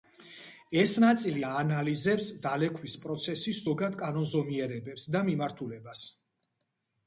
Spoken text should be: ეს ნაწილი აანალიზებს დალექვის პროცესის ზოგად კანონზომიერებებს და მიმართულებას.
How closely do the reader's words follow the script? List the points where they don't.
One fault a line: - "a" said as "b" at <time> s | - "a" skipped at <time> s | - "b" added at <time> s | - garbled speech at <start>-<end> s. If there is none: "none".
none